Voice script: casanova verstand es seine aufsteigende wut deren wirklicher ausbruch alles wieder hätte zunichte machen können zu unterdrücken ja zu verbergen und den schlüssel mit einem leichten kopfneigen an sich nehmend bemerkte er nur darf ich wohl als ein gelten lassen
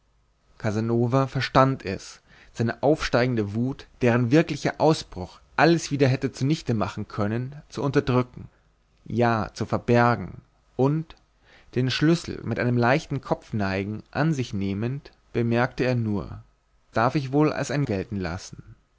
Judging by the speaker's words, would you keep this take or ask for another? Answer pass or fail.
pass